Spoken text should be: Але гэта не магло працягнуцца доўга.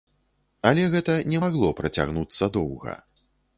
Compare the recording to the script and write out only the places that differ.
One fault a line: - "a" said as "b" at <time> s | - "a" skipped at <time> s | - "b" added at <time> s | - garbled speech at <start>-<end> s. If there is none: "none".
none